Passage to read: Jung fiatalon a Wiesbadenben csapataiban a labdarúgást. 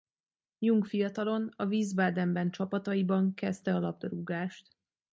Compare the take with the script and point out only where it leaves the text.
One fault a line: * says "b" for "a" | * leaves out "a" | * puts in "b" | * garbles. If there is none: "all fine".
* puts in "kezdte"